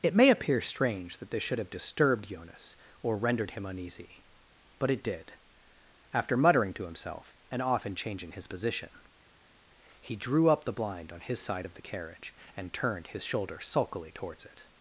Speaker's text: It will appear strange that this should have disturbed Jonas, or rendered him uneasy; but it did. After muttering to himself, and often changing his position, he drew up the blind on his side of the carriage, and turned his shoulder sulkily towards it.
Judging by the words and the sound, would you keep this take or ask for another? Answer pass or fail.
fail